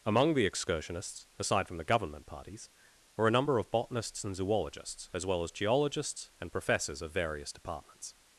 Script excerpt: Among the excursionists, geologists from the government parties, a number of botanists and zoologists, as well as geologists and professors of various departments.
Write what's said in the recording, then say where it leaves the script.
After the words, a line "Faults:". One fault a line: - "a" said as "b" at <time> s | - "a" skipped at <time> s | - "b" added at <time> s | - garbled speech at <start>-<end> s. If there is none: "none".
Among the excursionists, aside from the government parties, were a number of botanists and zoologists, as well as geologists and professors of various departments.
Faults:
- "geologists" said as "aside" at 1.4 s
- "were" added at 3.2 s